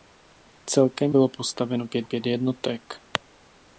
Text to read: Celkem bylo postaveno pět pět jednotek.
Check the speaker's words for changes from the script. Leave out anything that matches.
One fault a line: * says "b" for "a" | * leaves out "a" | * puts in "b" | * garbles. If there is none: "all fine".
all fine